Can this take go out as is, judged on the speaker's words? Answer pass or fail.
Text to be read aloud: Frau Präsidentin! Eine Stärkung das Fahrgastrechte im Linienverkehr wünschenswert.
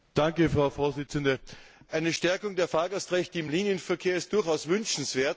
fail